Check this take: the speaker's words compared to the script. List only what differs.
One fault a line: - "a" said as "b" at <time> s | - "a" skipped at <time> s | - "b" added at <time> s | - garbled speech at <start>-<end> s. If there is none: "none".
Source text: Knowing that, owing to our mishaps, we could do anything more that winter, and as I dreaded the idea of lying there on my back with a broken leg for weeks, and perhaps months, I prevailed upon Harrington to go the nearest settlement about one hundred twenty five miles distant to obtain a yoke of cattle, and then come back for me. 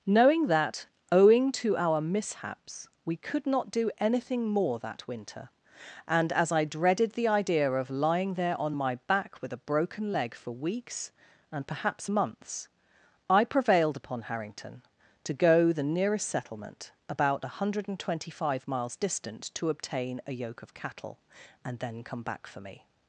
- "not" added at 3.5 s